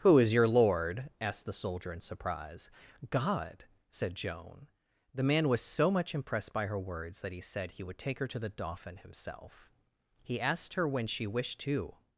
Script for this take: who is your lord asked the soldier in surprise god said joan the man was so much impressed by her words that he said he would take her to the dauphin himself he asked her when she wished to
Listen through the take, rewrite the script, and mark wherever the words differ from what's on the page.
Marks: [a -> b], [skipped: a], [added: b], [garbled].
who is your lord asked the soldier in surprise god said joan the man was so much impressed by her words that he said he would take her to the dauphin himself he asked her when she wished to